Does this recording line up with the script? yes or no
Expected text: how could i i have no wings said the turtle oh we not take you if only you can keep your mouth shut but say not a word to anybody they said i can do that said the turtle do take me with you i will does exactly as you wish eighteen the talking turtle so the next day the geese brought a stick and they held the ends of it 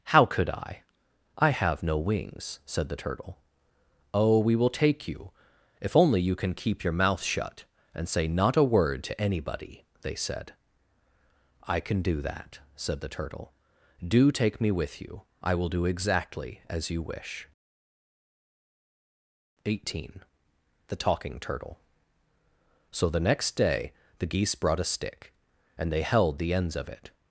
no